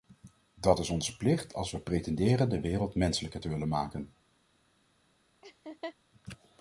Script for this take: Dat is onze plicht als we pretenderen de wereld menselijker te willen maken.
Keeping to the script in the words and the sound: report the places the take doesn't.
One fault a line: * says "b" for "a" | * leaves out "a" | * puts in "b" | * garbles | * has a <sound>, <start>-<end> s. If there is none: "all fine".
* has a laugh, 5.4-6.0 s